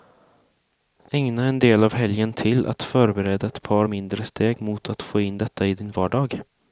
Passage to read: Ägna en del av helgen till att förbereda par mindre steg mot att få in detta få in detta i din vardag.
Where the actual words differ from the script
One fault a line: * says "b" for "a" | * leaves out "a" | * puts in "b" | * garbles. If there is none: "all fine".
* puts in "ett"
* leaves out "få in detta"